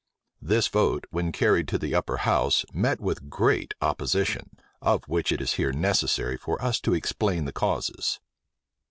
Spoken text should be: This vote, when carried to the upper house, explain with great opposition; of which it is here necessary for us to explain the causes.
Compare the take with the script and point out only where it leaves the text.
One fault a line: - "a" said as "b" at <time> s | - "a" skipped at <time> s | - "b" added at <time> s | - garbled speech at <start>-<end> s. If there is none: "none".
- "explain" said as "met" at 2.7 s